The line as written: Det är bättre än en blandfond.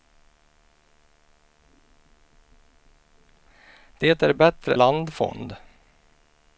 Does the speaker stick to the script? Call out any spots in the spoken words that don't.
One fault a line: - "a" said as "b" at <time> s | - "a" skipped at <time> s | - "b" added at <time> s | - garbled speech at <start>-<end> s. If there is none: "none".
- "än en" skipped at 4.8 s